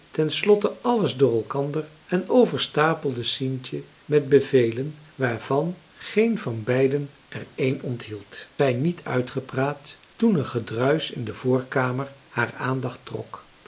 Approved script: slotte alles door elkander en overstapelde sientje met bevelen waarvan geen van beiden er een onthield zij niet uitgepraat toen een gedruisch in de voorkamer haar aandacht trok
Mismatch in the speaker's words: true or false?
false